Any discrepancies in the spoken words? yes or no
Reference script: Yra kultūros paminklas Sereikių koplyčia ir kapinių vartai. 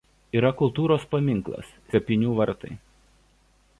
yes